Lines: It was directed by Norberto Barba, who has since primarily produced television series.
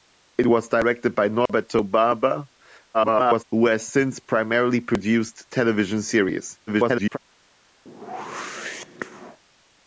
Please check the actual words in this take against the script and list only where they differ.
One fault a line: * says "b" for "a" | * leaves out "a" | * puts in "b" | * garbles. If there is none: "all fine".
* garbles
* garbles